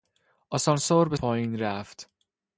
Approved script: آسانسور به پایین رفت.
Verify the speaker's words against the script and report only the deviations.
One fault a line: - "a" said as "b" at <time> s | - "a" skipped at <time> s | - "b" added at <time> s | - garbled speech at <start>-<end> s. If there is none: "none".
none